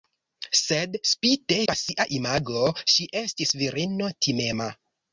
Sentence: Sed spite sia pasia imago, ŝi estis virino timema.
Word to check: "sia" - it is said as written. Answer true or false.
false